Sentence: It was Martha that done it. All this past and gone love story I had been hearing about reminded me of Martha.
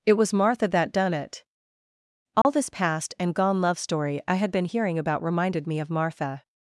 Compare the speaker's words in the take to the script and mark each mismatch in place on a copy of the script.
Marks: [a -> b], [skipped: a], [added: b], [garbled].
It was Martha that done it. All this past and gone love story I had been hearing about reminded me of Martha.